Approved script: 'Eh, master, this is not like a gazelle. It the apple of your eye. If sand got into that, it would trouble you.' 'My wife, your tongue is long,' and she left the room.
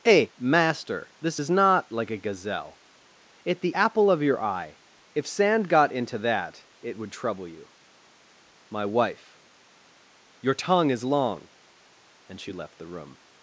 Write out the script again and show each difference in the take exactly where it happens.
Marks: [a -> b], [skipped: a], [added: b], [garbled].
'Eh, master, this is not like a gazelle. It the apple of your eye. If sand got into that, it would trouble you.' 'My wife, your tongue is long,' and she left the room.